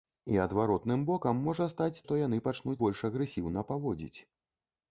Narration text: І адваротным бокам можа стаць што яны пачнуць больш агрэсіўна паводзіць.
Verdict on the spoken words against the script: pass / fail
pass